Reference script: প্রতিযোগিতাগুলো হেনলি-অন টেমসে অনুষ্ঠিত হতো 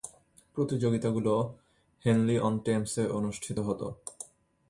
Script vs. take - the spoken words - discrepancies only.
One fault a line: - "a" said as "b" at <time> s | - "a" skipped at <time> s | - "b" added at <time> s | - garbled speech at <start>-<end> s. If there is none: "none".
none